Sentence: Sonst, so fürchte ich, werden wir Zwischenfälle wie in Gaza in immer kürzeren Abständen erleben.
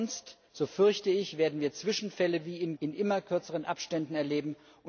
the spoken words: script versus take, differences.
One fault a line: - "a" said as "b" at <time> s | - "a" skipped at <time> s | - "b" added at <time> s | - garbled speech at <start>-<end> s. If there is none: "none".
- "Gaza" skipped at 2.8 s